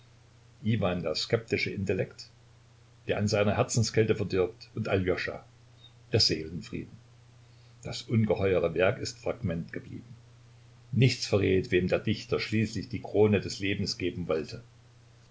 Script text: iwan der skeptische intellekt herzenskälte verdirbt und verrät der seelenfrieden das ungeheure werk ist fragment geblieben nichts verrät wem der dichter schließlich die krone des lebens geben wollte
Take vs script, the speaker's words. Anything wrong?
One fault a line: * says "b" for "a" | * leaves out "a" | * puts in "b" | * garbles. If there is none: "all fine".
* puts in "der an seiner"
* says "aljoscha" for "verrät"